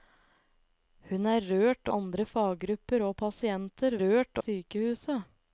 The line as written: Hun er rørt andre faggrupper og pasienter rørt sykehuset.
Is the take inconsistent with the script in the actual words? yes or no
no